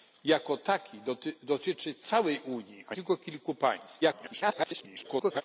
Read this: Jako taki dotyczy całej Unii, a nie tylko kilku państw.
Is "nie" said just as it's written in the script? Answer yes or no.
no